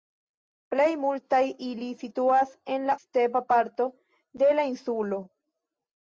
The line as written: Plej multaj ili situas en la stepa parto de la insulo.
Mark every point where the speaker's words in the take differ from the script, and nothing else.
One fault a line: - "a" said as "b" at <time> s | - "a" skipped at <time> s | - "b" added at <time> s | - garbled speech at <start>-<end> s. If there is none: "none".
none